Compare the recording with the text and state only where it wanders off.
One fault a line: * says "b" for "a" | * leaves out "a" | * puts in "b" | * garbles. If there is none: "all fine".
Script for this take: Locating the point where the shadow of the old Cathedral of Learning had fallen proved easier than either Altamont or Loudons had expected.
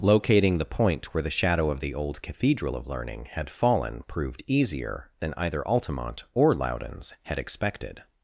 all fine